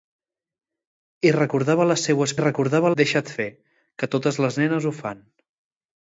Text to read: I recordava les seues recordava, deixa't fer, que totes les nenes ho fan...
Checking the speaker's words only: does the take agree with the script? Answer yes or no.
yes